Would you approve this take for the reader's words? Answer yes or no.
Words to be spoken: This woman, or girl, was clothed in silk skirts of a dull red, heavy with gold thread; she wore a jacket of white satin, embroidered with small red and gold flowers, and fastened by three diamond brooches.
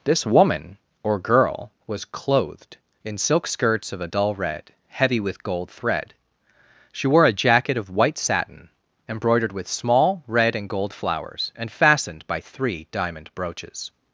yes